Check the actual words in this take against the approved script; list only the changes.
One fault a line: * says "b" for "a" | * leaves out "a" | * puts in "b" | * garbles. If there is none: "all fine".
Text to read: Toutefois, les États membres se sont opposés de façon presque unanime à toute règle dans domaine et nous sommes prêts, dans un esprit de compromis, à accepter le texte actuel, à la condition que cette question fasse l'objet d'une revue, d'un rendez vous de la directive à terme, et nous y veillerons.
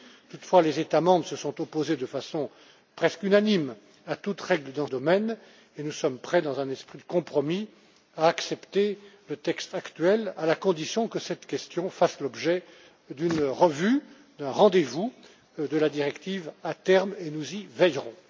all fine